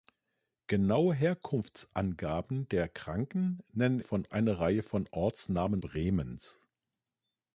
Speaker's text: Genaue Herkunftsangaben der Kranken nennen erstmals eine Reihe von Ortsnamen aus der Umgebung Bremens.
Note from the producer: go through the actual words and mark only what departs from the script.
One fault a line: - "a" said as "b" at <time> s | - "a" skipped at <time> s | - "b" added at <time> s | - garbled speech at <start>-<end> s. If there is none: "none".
- "erstmals" said as "von" at 4.0 s
- "aus der Umgebung" skipped at 5.8 s